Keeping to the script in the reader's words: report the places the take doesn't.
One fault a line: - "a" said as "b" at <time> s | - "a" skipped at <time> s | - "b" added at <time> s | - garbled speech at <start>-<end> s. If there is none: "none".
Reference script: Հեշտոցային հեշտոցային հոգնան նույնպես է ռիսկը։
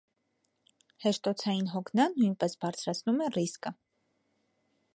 - "հեշտոցային" skipped at 1.7 s
- "բարձրացնում" added at 2.6 s